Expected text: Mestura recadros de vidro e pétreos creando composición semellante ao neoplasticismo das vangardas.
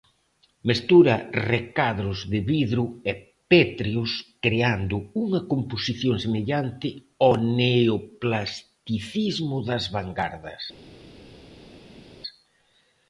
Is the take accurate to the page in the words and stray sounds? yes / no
no